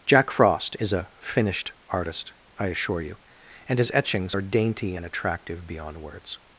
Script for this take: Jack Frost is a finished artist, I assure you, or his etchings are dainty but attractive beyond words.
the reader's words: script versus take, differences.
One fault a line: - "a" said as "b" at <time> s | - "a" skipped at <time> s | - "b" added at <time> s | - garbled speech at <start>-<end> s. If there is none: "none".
- "or" said as "and" at 3.7 s
- "but" said as "and" at 4.9 s